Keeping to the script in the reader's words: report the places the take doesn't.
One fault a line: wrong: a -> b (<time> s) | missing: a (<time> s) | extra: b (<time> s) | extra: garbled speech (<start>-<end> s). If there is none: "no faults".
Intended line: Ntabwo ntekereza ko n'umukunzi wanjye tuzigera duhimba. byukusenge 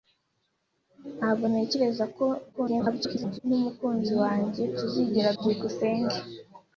extra: garbled speech (2.5-3.4 s)
missing: duhimba (5.3 s)